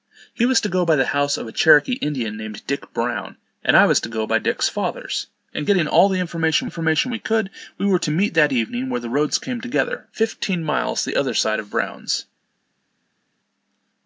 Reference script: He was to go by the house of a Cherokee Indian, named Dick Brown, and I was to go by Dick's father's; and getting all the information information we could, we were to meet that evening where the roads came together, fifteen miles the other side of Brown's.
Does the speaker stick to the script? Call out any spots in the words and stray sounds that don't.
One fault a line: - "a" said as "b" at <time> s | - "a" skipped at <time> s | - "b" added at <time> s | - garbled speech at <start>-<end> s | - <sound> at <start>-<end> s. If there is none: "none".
none